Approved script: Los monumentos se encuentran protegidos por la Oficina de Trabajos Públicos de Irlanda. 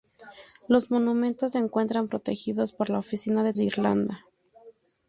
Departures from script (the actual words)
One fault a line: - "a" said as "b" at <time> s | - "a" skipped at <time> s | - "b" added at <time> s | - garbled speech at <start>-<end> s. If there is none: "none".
- "Trabajos Públicos" skipped at 3.5 s